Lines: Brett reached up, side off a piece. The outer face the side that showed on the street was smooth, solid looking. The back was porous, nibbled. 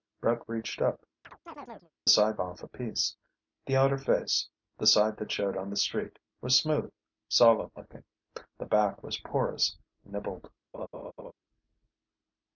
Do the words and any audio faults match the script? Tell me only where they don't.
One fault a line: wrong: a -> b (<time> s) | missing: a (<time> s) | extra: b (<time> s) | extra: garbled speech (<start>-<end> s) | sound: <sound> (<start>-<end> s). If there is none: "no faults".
sound: chirp (1.2-1.9 s)
sound: laugh (10.7-11.3 s)